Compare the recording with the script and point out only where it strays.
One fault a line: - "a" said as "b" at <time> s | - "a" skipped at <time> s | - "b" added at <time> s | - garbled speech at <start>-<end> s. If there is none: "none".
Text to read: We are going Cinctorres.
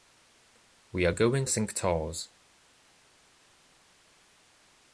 none